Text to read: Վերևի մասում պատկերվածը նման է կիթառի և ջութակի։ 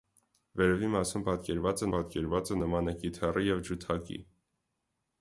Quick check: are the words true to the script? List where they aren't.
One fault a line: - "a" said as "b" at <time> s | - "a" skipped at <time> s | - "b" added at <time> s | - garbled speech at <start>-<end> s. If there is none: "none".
- "պատկերվածը" added at 1.9 s